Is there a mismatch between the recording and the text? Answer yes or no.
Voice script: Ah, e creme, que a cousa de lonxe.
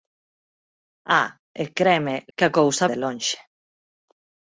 no